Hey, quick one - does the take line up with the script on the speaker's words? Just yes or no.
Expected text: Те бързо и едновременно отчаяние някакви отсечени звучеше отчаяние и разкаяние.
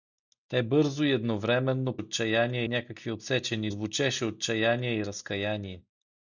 yes